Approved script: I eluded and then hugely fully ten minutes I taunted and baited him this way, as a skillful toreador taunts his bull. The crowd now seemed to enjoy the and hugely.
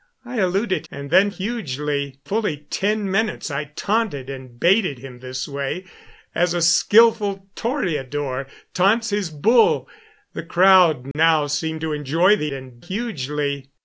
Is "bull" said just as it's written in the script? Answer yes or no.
yes